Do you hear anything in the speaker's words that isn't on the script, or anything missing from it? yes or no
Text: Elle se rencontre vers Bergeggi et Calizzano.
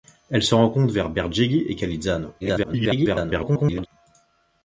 yes